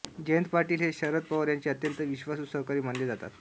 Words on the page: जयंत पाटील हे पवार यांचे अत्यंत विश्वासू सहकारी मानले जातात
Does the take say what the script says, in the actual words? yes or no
no